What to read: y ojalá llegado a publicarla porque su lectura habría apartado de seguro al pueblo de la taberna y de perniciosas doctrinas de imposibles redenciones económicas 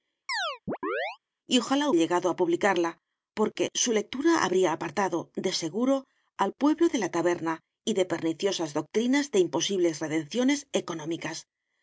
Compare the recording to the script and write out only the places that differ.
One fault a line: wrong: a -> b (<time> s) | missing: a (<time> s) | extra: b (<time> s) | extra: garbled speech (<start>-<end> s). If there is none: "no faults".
no faults